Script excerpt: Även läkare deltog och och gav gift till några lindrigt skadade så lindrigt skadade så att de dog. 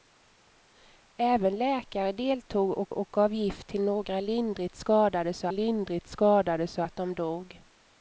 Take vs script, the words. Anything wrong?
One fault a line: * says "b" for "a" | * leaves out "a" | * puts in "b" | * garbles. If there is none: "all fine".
all fine